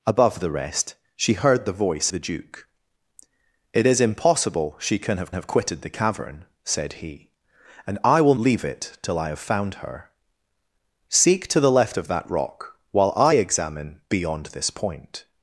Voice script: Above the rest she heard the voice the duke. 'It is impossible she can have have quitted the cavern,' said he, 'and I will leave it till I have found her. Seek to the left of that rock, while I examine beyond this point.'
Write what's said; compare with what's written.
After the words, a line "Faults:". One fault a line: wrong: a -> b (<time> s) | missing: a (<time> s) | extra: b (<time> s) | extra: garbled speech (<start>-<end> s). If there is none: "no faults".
Above the rest she heard the voice the duke. 'It is impossible she can have have quitted the cavern,' said he, 'and I will leave it till I have found her. Seek to the left of that rock, while I examine beyond this point.'
Faults:
no faults